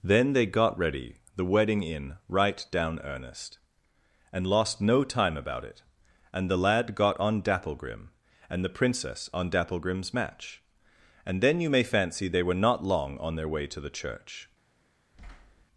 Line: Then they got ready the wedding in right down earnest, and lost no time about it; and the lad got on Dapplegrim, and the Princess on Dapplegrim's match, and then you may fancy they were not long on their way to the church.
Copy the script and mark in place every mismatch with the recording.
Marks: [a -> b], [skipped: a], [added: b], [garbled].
Then they got ready the wedding in right down earnest, and lost no time about it; and the lad got on Dapplegrim, and the Princess on Dapplegrim's match, and then you may fancy they were not long on their way to the church.